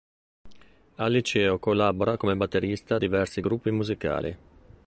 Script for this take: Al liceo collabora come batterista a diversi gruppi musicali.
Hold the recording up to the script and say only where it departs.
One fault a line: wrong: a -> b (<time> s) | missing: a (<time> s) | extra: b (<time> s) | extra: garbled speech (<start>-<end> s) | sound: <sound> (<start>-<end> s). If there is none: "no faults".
no faults